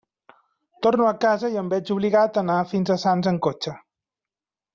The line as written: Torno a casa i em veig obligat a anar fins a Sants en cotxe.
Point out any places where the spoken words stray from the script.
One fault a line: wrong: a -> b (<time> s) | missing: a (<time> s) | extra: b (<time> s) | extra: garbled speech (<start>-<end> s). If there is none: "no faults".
no faults